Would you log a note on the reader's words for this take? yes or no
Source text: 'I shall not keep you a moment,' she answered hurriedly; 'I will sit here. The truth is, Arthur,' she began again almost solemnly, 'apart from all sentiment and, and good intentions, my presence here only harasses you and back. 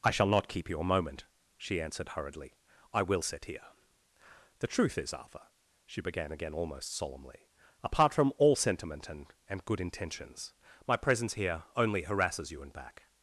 no